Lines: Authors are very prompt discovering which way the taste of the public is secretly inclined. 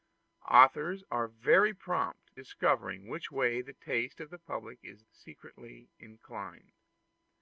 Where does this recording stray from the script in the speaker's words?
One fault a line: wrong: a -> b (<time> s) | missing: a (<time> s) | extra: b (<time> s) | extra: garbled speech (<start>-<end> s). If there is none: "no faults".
no faults